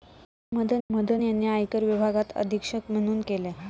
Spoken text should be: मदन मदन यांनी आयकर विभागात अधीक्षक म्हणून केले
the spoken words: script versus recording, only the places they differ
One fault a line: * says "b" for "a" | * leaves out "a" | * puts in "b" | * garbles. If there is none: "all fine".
all fine